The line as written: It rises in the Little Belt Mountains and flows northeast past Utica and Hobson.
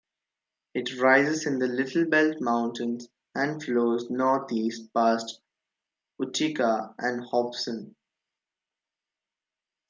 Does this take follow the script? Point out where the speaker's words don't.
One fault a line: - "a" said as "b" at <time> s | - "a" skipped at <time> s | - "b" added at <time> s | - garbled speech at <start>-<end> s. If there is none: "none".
none